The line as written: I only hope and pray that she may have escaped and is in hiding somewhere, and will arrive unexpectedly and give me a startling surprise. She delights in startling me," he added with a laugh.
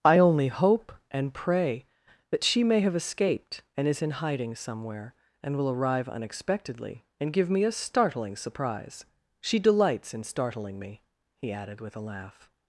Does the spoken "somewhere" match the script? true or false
true